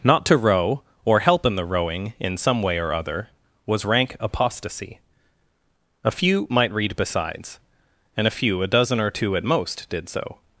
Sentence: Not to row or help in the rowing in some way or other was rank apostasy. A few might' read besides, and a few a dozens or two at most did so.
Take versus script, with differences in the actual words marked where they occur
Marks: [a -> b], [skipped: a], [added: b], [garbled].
Not to row or help in the rowing in some way or other was rank apostasy. A few might' read besides, and a few a [dozens -> dozen] or two at most did so.